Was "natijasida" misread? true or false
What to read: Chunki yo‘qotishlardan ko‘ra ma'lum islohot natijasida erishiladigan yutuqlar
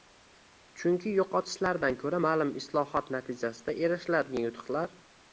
false